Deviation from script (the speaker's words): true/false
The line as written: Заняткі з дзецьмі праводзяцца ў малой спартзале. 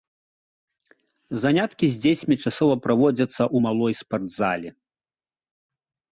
true